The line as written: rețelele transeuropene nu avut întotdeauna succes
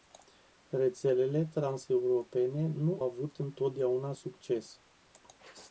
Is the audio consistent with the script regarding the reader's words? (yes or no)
yes